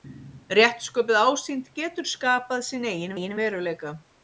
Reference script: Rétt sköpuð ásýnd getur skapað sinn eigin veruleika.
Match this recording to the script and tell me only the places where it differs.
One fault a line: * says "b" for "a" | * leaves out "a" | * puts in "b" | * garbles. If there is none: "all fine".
* puts in "eigin"